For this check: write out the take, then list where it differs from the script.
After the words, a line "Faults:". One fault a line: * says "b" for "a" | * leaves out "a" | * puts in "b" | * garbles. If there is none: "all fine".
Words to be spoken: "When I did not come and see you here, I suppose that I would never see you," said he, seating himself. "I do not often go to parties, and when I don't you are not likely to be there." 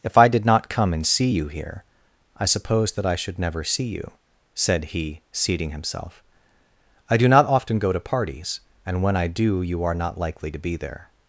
"If I did not come and see you here, I suppose that I should never see you," said he, seating himself. "I do not often go to parties, and when I do you are not likely to be there."
Faults:
* says "If" for "When"
* says "should" for "would"
* says "do" for "don't"